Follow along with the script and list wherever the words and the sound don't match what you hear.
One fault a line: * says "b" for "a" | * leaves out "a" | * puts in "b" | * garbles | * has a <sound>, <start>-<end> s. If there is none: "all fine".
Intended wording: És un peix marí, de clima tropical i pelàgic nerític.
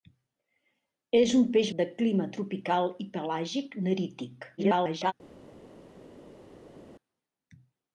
* leaves out "marí"
* garbles